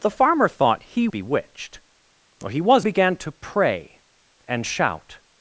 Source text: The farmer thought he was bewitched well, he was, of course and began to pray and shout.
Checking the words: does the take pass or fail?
fail